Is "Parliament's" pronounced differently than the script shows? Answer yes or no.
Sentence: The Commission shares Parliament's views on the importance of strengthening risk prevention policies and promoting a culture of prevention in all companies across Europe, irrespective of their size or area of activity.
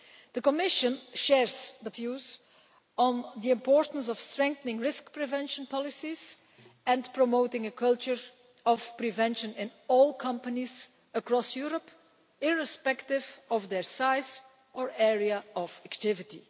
yes